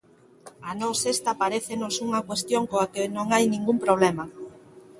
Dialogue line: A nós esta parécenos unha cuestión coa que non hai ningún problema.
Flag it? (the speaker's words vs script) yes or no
no